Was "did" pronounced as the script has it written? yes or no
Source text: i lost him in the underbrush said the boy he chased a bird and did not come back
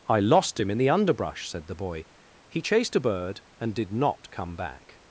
yes